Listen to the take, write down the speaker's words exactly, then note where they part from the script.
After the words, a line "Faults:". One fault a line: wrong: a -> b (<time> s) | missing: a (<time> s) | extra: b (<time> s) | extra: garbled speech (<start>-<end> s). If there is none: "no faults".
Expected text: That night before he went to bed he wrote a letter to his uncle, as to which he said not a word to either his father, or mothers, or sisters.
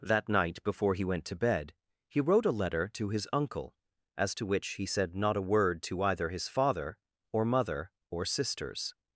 That night before he went to bed he wrote a letter to his uncle, as to which he said not a word to either his father, or mother, or sisters.
Faults:
wrong: mothers -> mother (7.5 s)